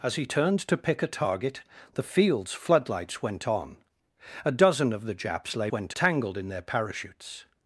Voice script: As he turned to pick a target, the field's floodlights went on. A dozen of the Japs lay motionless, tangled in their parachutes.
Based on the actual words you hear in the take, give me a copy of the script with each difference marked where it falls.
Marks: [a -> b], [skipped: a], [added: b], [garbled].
As he turned to pick a target, the field's floodlights went on. A dozen of the Japs lay [motionless, -> went] tangled in their parachutes.